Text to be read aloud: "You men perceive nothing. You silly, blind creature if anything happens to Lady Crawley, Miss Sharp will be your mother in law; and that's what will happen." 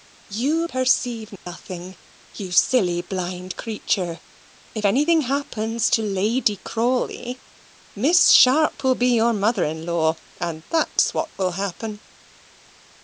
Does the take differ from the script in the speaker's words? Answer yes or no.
yes